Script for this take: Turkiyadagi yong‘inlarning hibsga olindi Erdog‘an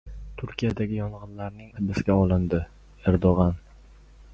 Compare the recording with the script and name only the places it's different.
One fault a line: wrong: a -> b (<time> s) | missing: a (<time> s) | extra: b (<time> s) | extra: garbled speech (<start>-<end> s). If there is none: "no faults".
no faults